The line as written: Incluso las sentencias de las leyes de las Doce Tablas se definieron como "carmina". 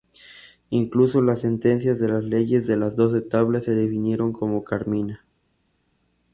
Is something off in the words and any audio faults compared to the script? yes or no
no